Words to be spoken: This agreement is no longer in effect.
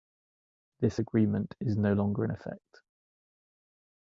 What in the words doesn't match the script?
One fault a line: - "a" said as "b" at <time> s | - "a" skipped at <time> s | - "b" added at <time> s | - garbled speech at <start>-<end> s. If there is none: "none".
none